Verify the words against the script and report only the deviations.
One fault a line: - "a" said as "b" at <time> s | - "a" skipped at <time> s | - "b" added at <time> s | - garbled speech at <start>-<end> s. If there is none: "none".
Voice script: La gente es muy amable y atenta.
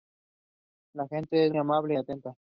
- "muy" skipped at 1.5 s